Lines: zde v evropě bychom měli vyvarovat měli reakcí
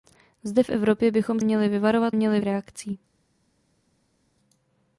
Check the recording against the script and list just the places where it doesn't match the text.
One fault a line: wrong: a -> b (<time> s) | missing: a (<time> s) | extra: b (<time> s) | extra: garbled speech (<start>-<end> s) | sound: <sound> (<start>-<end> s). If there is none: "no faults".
no faults